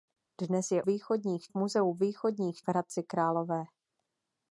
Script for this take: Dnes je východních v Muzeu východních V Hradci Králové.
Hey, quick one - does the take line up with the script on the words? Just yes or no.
yes